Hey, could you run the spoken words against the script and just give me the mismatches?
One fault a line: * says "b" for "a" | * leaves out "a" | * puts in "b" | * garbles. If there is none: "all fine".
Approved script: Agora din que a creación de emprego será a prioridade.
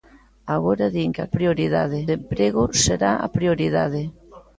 * says "prioridade" for "creación"